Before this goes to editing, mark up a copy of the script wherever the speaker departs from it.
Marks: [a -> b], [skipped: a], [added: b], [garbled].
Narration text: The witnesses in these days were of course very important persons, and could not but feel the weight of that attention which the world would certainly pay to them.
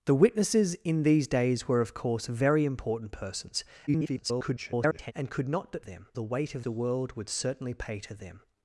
The witnesses in these days were of course very important persons, [garbled] and could not but [feel -> them] the weight of [skipped: that attention which] the world would certainly pay to them.